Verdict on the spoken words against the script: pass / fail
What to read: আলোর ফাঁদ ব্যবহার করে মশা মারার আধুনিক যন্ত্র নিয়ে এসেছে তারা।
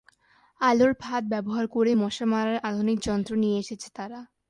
pass